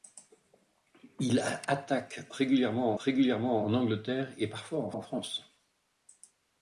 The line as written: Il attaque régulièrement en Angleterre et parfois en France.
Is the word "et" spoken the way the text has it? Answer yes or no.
yes